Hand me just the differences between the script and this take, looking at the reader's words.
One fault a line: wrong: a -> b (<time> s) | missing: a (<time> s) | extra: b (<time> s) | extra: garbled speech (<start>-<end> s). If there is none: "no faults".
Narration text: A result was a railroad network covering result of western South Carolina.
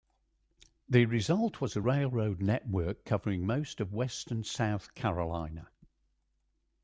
wrong: A -> The (0.9 s)
wrong: result -> most (3.4 s)